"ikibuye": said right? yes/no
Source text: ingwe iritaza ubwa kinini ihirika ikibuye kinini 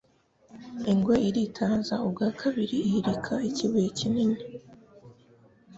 yes